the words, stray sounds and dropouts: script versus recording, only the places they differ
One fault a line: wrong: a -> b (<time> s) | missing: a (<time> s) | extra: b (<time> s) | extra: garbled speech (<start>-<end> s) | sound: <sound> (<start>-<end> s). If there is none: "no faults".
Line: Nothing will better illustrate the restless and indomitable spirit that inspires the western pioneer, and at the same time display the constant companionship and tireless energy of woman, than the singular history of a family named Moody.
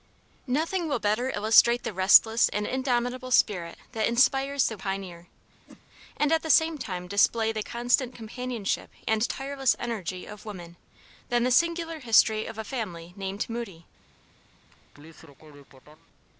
missing: western (4.8 s)
sound: whoosh (5.7-5.8 s)
sound: laugh (14.7-16.1 s)